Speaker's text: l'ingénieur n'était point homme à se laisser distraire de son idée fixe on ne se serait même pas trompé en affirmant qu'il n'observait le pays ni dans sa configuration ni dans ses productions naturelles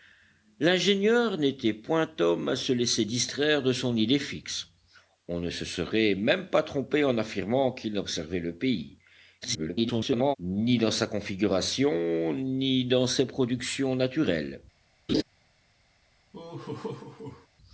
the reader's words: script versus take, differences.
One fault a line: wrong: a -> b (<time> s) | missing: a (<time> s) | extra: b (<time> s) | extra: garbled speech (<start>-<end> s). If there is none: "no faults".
extra: garbled speech (9.4-10.4 s)